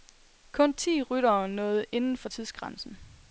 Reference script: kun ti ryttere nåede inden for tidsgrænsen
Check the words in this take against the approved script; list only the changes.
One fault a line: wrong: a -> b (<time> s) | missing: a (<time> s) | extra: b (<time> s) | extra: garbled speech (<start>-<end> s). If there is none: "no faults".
no faults